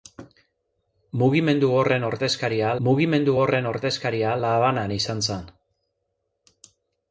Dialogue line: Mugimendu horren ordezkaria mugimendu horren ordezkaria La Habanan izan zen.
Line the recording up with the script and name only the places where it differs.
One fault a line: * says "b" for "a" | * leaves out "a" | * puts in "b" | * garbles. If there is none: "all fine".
all fine